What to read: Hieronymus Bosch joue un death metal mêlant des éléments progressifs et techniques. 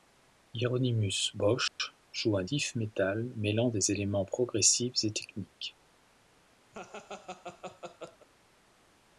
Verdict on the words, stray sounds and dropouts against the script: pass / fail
fail